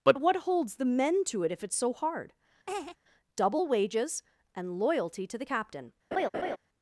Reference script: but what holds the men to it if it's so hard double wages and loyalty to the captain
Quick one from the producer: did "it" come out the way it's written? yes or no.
yes